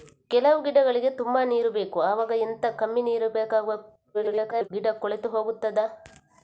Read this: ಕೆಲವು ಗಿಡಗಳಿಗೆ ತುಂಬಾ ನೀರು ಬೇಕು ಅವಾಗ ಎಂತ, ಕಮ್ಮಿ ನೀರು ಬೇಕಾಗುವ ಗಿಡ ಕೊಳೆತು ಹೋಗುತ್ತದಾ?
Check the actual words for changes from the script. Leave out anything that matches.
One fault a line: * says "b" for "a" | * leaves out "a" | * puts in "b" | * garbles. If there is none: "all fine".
* garbles